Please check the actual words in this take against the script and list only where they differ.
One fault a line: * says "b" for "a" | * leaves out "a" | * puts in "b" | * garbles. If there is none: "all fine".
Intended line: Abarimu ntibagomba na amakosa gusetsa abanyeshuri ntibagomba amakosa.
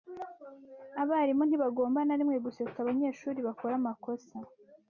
* says "rimwe" for "amakosa"
* says "bakora" for "ntibagomba"